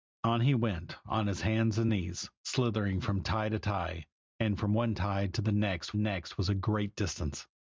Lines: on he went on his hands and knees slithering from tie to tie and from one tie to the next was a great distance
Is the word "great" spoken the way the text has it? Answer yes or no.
yes